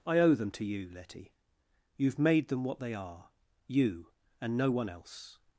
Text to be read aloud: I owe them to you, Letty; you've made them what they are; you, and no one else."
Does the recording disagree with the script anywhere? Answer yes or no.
no